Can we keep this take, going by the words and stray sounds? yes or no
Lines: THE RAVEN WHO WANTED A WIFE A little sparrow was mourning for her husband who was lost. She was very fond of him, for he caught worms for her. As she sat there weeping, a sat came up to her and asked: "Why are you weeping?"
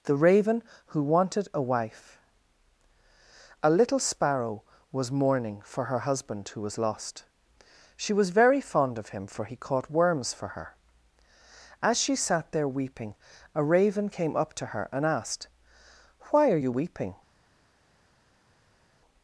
no